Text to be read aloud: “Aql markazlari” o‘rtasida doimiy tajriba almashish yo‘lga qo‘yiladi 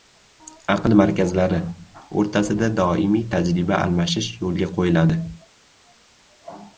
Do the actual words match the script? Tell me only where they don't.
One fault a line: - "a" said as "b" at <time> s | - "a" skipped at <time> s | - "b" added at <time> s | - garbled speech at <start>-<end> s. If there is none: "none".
none